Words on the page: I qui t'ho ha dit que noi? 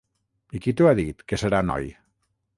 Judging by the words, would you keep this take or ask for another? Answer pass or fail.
fail